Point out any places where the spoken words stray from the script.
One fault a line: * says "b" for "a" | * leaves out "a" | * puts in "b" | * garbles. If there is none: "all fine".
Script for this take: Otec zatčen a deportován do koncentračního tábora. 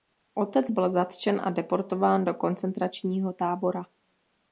* puts in "byl"